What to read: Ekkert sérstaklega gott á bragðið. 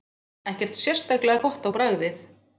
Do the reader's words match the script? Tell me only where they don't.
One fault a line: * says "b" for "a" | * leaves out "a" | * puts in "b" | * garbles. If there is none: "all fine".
all fine